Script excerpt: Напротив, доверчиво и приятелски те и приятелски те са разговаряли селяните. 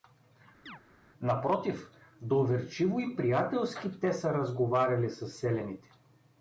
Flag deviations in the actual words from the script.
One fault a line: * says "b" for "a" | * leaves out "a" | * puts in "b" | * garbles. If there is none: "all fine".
* leaves out "и приятелски те"
* puts in "със"